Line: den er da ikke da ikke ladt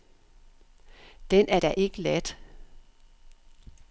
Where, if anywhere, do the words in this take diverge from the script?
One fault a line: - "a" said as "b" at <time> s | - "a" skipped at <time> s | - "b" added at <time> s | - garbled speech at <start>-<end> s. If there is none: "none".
- "da ikke" skipped at 2.0 s